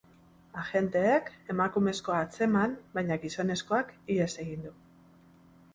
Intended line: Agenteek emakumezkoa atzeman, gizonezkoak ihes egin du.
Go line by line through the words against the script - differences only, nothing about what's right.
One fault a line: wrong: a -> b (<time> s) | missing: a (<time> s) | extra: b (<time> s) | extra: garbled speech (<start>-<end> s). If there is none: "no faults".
extra: baina (3.0 s)